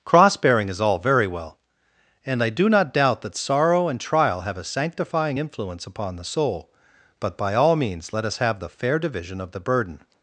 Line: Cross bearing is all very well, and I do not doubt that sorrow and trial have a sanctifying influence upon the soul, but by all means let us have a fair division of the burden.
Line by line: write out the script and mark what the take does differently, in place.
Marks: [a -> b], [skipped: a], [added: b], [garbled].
Cross bearing is all very well, and I do not doubt that sorrow and trial have a sanctifying influence upon the soul, but by all means let us have [a -> the] fair division of the burden.